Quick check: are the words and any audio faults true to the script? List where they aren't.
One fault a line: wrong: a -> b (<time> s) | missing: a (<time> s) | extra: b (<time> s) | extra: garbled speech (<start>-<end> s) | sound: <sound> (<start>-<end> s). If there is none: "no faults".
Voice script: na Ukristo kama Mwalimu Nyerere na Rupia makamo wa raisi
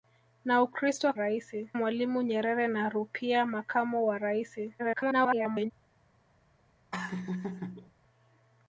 wrong: kama -> raisi (1.1 s)
extra: garbled speech (4.8-5.7 s)
sound: laugh (6.9-7.9 s)